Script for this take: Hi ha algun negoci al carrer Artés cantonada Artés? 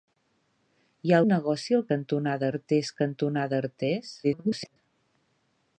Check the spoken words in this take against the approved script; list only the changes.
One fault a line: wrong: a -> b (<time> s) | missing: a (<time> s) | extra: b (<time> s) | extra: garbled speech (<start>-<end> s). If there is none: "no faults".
missing: algun (1.2 s)
wrong: carrer -> cantonada (1.9 s)
extra: garbled speech (4.2-4.8 s)